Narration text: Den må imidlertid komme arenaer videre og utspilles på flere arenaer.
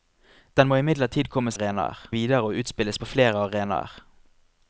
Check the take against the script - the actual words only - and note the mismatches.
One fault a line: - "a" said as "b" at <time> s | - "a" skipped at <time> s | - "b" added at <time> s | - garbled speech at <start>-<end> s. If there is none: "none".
none